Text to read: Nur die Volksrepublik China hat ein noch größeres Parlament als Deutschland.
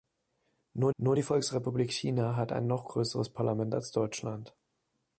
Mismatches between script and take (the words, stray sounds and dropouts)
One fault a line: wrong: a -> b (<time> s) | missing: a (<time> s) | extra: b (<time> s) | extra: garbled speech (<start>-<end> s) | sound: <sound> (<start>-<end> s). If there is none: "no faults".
extra: nur (1.0 s)